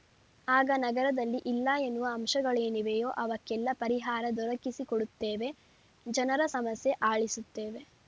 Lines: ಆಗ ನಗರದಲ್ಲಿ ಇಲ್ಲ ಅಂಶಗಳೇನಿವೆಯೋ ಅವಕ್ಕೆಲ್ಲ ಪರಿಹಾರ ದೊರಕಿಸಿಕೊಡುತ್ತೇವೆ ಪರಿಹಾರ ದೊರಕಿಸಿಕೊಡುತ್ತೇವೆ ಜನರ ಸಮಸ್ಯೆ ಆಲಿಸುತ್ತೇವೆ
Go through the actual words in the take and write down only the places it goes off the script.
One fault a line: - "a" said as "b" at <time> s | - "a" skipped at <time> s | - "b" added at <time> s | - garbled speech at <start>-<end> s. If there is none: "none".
- "ಎನ್ನುವ" added at 1.8 s
- "ಪರಿಹಾರ ದೊರಕಿಸಿಕೊಡುತ್ತೇವೆ" skipped at 5.5 s